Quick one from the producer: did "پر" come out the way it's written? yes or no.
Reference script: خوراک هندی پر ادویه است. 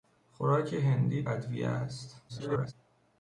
no